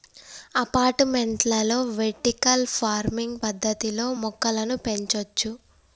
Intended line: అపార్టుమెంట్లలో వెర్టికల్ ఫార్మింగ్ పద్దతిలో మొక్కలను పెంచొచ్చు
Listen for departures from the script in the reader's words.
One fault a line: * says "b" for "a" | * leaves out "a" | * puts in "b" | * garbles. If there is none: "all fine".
all fine